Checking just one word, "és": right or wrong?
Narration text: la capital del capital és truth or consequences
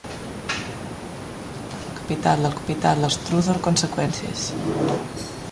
right